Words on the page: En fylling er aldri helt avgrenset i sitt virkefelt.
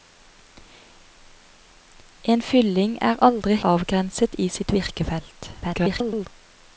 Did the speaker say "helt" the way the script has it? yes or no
no